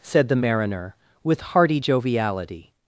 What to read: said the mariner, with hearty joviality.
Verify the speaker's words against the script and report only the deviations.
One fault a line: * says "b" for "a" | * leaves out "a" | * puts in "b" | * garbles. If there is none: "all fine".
all fine